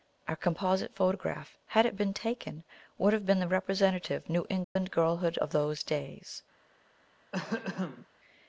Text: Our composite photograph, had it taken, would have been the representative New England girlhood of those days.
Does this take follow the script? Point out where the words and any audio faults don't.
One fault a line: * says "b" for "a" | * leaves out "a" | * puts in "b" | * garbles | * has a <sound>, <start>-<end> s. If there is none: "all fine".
* puts in "been"
* has a dropout, 4.6-4.8 s
* has a throat clearing, 7.3-8.1 s